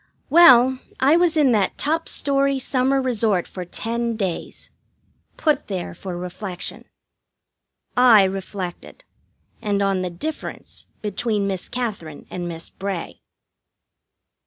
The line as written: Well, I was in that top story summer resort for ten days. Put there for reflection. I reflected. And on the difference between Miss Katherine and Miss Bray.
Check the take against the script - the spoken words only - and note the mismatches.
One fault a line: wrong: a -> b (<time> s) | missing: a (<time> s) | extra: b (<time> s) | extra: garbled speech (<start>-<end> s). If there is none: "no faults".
no faults